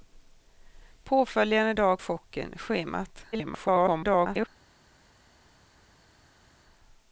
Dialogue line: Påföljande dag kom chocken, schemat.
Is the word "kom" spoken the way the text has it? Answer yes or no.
no